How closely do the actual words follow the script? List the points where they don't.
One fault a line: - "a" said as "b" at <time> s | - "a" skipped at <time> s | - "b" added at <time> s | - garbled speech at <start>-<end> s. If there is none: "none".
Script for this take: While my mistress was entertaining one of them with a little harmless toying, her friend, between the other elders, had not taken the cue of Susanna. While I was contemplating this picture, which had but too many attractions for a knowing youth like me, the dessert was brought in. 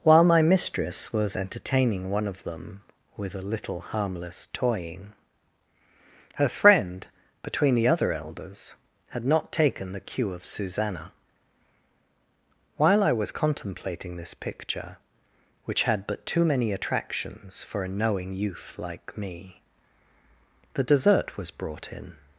none